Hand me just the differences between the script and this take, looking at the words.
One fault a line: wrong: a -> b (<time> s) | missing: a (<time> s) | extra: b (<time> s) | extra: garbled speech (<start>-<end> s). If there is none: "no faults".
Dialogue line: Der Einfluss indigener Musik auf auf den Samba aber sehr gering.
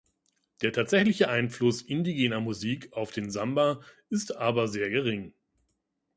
extra: tatsächliche (0.7 s)
missing: auf (3.1 s)
extra: ist (4.1 s)